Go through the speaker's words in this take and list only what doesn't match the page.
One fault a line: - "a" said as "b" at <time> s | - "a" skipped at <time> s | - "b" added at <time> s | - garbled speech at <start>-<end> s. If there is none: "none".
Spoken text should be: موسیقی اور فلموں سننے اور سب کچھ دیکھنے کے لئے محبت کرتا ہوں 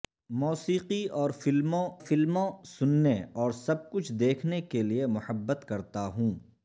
- "فلموں" added at 2.0 s